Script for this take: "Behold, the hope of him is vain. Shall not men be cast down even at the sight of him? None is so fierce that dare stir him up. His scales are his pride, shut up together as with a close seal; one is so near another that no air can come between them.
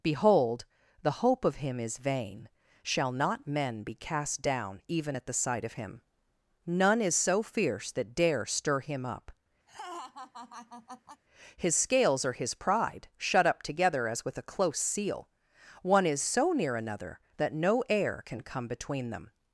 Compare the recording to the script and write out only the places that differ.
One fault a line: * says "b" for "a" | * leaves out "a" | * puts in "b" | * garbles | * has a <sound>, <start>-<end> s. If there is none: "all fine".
* has a laugh, 9.7-11.2 s